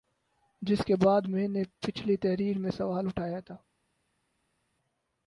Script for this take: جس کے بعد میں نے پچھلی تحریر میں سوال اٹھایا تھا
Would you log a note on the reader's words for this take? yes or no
no